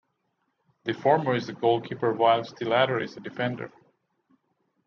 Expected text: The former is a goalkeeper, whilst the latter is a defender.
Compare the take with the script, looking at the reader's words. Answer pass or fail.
pass